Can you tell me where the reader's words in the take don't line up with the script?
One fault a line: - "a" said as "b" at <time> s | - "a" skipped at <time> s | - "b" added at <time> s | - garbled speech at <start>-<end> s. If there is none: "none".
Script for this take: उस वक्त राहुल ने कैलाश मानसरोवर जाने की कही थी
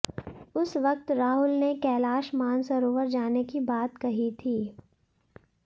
- "बात" added at 3.6 s